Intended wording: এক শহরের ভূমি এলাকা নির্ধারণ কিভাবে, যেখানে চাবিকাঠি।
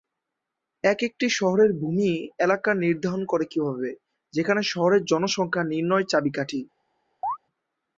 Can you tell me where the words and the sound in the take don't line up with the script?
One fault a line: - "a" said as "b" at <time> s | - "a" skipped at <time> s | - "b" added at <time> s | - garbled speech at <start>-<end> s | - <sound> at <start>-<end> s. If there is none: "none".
- "একটি" added at 1.0 s
- "করে" added at 3.2 s
- "শহরের জনসংখ্যা নির্ণয়" added at 4.7 s
- chirp at 7.2-7.4 s